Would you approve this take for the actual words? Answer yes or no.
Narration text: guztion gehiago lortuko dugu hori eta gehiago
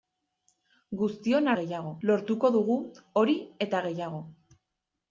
yes